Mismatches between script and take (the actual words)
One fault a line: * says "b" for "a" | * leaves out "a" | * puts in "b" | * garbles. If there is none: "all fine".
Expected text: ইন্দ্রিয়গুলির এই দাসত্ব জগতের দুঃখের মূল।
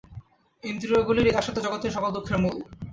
* puts in "সকল"